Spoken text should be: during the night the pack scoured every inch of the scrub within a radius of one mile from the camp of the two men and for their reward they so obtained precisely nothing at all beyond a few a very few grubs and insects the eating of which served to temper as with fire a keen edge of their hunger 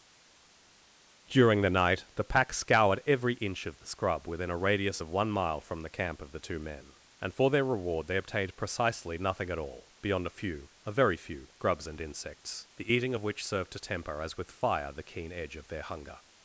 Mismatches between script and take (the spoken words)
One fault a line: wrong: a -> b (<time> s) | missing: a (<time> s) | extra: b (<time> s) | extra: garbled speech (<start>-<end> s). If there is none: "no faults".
missing: so (8.2 s)
wrong: a -> the (14.9 s)